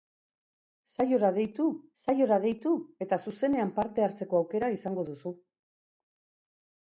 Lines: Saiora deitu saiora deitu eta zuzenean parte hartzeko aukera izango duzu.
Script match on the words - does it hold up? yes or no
yes